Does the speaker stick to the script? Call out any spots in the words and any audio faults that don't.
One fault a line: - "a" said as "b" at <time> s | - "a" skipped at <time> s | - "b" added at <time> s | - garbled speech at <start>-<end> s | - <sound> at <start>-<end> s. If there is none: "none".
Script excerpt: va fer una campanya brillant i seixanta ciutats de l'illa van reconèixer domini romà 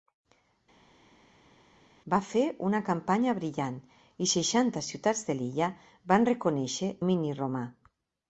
none